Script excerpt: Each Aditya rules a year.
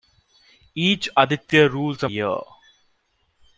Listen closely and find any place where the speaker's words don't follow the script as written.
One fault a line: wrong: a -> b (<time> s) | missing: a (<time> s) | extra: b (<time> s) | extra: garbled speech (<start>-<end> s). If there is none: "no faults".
no faults